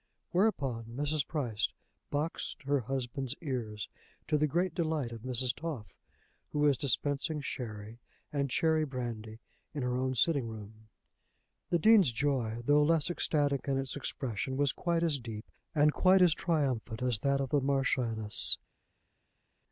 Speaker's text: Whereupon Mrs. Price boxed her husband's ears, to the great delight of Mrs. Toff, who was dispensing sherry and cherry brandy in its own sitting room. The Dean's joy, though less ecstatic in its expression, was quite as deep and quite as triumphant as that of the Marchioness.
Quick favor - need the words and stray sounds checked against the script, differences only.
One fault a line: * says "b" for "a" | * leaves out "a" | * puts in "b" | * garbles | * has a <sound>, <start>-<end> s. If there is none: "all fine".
* says "her" for "its"